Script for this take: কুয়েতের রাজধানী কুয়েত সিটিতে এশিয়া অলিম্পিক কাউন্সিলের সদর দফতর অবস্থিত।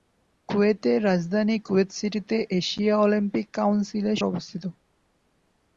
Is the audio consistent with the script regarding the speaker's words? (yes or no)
no